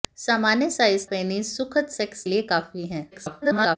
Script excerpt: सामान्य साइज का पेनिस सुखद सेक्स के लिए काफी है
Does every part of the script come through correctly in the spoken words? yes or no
no